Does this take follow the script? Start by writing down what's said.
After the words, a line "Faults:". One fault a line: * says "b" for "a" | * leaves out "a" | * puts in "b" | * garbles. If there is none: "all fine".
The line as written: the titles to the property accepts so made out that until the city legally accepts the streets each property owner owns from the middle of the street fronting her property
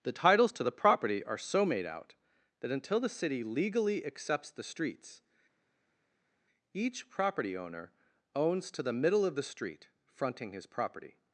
the titles to the property are so made out that until the city legally accepts the streets each property owner owns to the middle of the street fronting his property
Faults:
* says "are" for "accepts"
* says "to" for "from"
* says "his" for "her"